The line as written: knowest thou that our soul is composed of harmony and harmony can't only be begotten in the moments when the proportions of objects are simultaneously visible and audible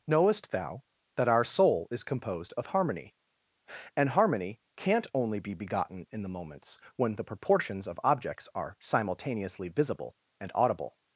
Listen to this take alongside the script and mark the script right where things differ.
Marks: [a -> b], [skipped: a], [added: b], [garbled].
knowest thou that our soul is composed of harmony and harmony can't only be begotten in the moments when the proportions of objects are simultaneously visible and audible